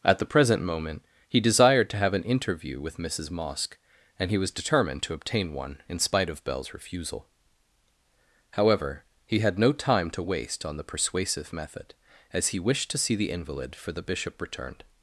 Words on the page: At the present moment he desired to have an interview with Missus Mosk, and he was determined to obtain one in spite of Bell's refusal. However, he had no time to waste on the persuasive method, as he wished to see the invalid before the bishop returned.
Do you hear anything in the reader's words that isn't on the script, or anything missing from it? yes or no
yes